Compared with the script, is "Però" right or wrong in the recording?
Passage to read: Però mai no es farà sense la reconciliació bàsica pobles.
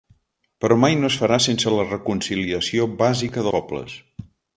right